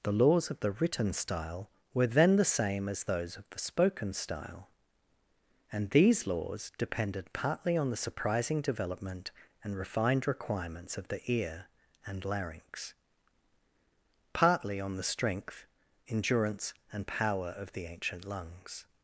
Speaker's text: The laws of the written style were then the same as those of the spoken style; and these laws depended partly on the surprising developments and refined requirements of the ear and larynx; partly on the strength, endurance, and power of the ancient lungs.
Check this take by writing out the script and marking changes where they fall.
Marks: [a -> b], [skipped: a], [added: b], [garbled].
The laws of the written style were then the same as those of the spoken style; and these laws depended partly on the surprising [developments -> development] and refined requirements of the ear and larynx; partly on the strength, endurance, and power of the ancient lungs.